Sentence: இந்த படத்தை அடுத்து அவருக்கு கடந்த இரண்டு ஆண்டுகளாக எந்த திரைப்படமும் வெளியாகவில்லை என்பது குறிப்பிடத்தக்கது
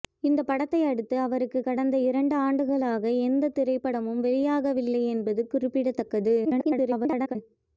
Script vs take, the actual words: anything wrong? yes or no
yes